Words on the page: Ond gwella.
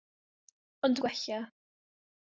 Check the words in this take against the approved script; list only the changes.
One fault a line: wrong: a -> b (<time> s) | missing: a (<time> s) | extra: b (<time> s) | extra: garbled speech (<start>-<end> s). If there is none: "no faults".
no faults